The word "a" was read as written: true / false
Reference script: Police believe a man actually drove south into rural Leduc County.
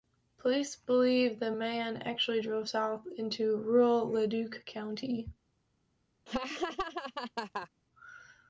false